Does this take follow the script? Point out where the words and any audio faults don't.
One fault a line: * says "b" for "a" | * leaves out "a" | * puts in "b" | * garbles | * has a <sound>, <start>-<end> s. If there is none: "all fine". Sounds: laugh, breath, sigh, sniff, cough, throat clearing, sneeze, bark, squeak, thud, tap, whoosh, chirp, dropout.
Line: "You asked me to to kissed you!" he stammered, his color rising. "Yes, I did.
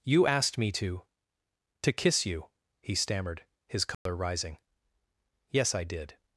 * says "kiss" for "kissed"
* has a dropout, 3.9-4.1 s